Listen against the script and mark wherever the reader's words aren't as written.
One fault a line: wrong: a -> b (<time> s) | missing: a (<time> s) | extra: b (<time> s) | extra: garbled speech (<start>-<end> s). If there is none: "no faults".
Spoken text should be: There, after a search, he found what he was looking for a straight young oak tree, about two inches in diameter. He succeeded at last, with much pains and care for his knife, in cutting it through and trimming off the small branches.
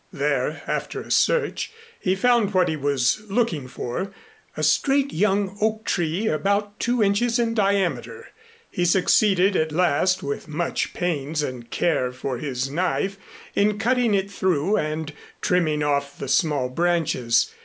no faults